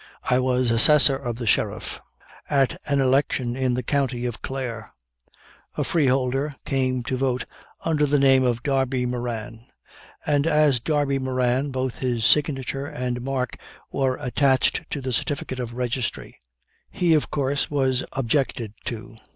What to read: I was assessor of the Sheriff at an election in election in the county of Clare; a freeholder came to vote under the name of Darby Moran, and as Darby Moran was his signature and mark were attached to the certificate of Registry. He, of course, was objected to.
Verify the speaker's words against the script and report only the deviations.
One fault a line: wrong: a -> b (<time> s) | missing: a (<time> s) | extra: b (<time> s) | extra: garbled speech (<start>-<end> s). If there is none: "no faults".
missing: election in (3.8 s)
wrong: was -> both (11.7 s)